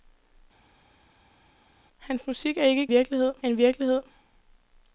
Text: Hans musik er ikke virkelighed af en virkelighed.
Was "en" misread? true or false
false